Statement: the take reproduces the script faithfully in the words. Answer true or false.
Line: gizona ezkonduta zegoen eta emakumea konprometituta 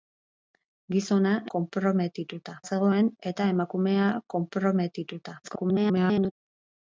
false